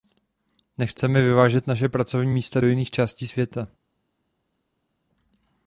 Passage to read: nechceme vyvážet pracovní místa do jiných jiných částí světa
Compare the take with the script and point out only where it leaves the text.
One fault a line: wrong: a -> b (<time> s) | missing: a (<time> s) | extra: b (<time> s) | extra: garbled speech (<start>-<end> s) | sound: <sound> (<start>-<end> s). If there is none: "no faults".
extra: naše (1.7 s)
missing: jiných (2.9 s)